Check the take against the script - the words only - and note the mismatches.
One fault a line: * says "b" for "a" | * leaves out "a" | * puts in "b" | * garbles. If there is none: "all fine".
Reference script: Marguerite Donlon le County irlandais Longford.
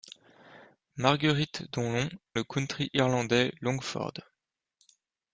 all fine